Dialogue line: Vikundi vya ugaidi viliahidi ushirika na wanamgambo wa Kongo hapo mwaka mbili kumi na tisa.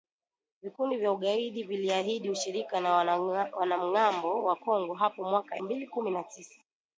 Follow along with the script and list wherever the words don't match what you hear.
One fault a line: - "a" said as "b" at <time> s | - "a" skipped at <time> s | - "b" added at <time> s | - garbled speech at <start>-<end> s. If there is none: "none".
none